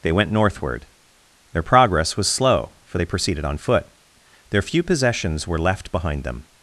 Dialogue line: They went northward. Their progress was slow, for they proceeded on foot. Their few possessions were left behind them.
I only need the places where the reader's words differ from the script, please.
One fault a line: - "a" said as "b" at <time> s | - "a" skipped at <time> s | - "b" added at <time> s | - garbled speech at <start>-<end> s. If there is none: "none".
none